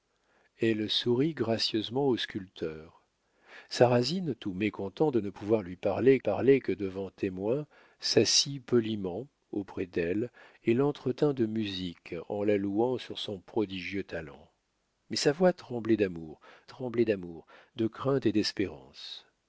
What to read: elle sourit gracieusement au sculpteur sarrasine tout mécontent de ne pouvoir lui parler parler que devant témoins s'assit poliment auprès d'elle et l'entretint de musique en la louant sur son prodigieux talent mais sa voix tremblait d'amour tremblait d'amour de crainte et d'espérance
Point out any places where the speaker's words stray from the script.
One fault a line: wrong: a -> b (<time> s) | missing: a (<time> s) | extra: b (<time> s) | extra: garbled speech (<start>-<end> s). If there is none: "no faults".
no faults